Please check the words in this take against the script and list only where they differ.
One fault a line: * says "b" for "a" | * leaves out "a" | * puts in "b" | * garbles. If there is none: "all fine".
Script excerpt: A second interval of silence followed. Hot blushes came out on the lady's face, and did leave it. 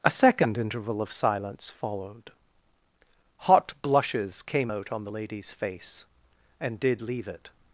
all fine